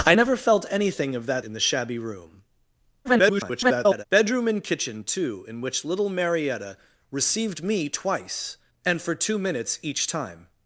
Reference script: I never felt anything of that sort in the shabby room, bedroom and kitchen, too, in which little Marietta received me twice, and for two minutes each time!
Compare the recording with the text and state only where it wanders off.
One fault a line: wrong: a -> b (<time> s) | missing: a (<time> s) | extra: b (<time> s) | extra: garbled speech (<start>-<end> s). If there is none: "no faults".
missing: sort (1.4 s)
extra: garbled speech (3.0-4.0 s)